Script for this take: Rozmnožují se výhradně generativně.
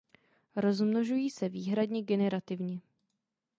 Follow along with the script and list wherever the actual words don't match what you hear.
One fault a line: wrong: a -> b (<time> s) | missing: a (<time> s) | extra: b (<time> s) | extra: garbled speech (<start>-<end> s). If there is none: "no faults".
no faults